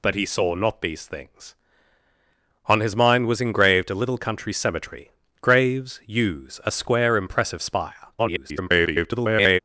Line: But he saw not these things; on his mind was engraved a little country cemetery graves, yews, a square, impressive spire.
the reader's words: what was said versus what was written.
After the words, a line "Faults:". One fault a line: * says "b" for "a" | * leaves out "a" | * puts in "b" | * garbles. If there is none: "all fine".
But he saw not these things; on his mind was engraved a little country cemetery graves, yews, a square, impressive spire. [garbled]
Faults:
* garbles